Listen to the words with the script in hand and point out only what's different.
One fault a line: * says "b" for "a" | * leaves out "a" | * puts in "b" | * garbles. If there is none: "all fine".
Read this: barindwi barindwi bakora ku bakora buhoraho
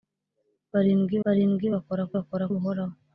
all fine